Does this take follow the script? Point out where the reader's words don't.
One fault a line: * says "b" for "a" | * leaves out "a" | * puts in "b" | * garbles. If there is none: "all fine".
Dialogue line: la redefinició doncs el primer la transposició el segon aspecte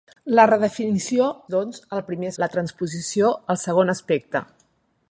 all fine